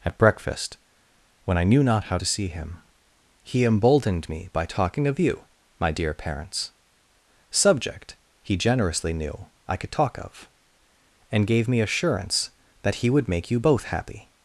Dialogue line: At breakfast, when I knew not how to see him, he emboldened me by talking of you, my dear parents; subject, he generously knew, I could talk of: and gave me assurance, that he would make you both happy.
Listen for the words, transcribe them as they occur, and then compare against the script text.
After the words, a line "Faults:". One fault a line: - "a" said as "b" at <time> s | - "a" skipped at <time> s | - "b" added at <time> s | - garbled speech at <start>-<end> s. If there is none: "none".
At breakfast, when I knew not how to see him, he emboldened me by talking of you, my dear parents; subject, he generously knew, I could talk of: and gave me assurance, that he would make you both happy.
Faults:
none